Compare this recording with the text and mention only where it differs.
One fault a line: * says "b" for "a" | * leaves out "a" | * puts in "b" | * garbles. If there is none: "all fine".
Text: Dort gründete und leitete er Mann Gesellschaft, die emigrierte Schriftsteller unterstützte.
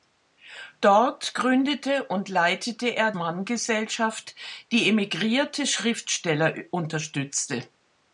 all fine